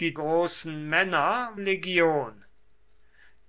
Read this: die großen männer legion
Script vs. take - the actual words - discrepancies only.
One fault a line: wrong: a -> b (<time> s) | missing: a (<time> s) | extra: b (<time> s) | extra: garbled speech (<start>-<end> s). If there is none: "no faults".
no faults